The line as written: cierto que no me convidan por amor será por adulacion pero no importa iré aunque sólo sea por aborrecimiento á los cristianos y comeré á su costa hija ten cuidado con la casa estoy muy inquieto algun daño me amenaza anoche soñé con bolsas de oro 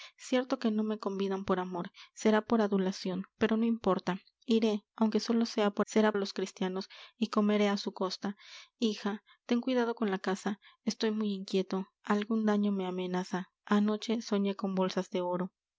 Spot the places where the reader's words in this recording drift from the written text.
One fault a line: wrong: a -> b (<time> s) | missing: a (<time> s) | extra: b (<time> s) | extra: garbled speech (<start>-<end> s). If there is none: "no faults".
wrong: aborrecimiento -> será (5.9 s)